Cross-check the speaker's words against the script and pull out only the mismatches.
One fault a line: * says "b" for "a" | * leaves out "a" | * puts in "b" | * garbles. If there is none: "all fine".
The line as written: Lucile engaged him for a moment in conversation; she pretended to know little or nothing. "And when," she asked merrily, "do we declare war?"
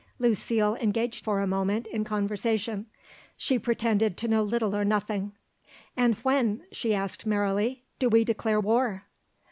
* leaves out "him"